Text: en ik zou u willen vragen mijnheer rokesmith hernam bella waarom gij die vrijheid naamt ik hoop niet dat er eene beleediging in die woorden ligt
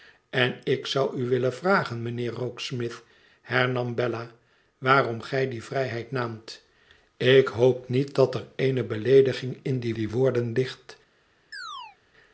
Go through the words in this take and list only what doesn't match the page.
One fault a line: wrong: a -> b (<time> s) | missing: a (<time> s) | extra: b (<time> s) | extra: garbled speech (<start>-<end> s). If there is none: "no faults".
extra: die (9.9 s)